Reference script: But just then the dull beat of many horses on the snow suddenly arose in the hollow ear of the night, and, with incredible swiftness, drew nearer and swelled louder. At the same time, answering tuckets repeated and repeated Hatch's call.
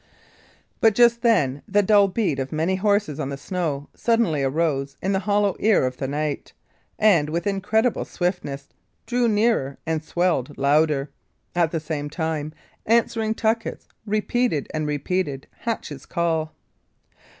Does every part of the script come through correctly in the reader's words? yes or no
yes